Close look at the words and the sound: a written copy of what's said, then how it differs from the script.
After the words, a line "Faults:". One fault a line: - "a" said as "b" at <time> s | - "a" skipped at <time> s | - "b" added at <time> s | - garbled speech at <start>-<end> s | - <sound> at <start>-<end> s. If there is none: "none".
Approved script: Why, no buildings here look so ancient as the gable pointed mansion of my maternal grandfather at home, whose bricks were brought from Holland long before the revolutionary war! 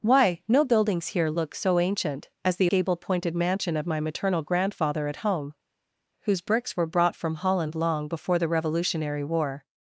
Why, no buildings here look so ancient as the gable pointed mansion of my maternal grandfather at home, whose bricks were brought from Holland long before the revolutionary war!
Faults:
none